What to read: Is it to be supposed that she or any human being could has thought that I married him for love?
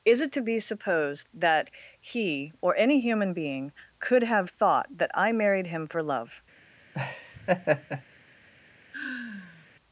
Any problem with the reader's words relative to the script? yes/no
yes